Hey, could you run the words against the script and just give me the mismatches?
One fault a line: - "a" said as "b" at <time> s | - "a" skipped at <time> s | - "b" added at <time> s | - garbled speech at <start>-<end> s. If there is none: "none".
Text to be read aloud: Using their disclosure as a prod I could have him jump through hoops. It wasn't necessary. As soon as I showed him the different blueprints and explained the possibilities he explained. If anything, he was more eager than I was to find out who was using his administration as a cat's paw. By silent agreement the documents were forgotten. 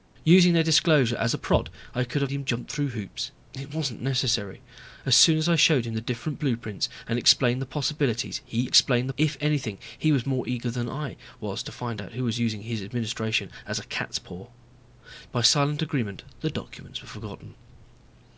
none